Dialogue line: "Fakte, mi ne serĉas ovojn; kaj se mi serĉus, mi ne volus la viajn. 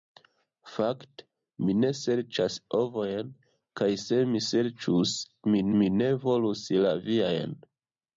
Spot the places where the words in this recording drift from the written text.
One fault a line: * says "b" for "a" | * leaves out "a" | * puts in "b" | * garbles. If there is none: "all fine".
* puts in "mi"